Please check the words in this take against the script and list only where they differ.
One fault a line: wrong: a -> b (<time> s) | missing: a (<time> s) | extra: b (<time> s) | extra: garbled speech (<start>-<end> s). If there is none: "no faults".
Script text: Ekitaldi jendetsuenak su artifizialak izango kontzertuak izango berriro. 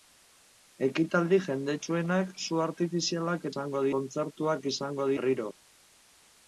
no faults